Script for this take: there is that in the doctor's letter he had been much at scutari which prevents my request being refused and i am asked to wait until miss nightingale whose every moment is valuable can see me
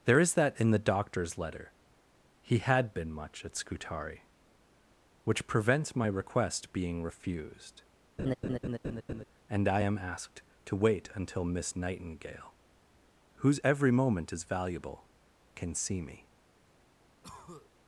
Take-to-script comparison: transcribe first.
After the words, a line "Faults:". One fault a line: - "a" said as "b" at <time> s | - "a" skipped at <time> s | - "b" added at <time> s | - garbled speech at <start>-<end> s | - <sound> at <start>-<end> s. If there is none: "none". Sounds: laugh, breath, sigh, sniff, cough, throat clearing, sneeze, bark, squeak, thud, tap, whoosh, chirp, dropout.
there is that in the doctor's letter he had been much at scutari which prevents my request being refused and i am asked to wait until miss nightingale whose every moment is valuable can see me
Faults:
- laugh at 8.2-9.2 s
- cough at 17.2-17.7 s